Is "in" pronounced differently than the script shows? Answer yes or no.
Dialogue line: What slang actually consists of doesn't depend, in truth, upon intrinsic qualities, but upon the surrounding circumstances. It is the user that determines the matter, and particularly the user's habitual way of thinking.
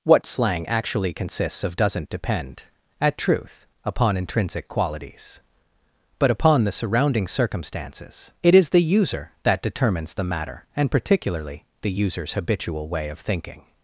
yes